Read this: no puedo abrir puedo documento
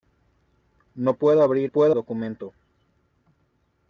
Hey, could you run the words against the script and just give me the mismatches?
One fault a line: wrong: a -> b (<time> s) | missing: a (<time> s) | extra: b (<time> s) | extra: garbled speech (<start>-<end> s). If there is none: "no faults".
no faults